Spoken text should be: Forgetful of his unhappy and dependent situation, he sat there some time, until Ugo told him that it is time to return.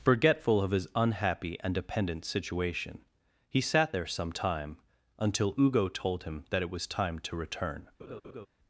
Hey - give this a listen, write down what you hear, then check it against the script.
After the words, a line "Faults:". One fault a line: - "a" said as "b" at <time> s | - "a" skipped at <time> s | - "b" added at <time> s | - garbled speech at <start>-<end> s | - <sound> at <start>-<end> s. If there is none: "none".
Forgetful of his unhappy and dependent situation, he sat there some time, until Ugo told him that it was time to return.
Faults:
- "is" said as "was" at 6.7 s
- laugh at 8.0-8.5 s